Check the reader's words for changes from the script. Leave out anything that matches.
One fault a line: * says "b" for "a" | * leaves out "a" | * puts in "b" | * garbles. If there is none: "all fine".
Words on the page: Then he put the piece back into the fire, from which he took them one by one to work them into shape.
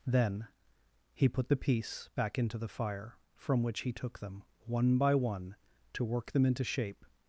all fine